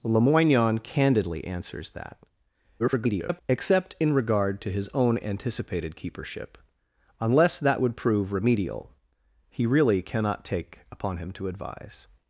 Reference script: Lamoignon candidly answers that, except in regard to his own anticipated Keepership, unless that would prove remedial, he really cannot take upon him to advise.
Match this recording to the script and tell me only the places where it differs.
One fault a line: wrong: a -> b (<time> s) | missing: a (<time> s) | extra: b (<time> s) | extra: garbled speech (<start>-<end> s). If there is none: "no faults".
extra: garbled speech (2.8-3.4 s)